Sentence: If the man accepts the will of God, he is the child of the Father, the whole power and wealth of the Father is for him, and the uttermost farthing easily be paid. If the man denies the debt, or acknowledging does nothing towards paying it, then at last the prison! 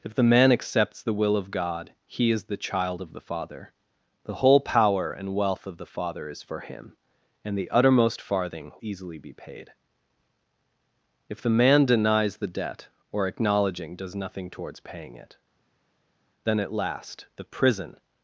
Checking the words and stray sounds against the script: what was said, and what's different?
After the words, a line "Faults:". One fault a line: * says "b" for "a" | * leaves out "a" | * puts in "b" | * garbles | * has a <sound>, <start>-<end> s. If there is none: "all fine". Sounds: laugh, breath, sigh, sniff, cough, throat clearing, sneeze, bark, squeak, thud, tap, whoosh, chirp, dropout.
If the man accepts the will of God, he is the child of the Father, the whole power and wealth of the Father is for him, and the uttermost farthing easily be paid. If the man denies the debt, or acknowledging does nothing towards paying it, then at last the prison!
Faults:
all fine